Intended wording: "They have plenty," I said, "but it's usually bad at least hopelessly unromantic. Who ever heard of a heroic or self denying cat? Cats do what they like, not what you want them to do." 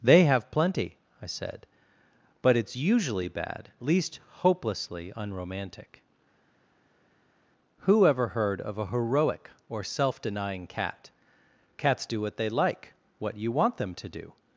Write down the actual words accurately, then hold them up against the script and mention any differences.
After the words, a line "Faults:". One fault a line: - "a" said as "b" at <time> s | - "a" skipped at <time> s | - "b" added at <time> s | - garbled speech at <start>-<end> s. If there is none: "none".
"They have plenty," I said, "but it's usually bad at least hopelessly unromantic. Who ever heard of a heroic or self denying cat? Cats do what they like, what you want them to do."
Faults:
- "not" skipped at 12.9 s